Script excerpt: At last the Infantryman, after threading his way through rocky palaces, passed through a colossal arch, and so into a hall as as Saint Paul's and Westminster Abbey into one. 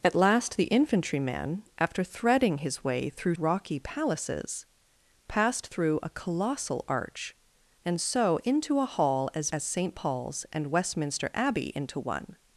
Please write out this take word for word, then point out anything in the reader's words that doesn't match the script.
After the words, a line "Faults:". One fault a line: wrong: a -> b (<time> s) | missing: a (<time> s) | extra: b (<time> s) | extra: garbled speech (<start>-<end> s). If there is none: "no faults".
At last the Infantryman, after threading his way through rocky palaces, passed through a colossal arch, and so into a hall as as Saint Paul's and Westminster Abbey into one.
Faults:
no faults